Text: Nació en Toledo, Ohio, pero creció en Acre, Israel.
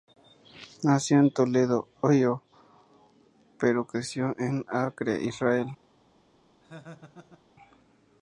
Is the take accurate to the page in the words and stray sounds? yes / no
no